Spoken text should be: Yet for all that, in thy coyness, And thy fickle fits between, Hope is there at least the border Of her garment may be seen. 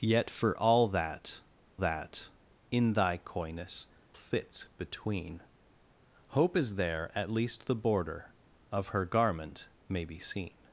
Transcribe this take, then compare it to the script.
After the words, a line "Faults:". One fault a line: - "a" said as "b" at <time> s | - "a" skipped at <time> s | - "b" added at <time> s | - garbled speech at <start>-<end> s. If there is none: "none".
Yet for all that that, in thy coyness, Fits between, Hope is there at least the border Of her garment may be seen.
Faults:
- "that" added at 1.8 s
- "And thy fickle" skipped at 3.9 s